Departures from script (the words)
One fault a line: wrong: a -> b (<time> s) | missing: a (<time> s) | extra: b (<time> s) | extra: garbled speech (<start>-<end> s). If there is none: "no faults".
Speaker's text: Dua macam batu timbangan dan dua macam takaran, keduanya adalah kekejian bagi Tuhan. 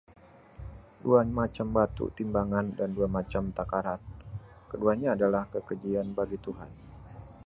no faults